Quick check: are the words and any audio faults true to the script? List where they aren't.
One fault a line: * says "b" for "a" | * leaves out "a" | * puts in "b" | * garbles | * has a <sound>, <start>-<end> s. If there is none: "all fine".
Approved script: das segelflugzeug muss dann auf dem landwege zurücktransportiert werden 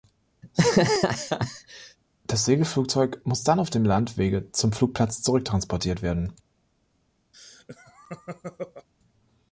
* has a laugh, 0.4-2.0 s
* puts in "zum flugplatz"
* has a laugh, 7.3-8.9 s